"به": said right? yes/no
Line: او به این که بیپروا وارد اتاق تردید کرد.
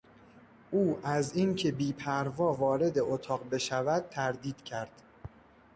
no